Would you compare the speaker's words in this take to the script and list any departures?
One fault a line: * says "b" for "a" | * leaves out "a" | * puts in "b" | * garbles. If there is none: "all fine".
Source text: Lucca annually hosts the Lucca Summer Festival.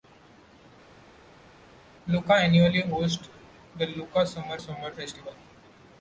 * puts in "Summer"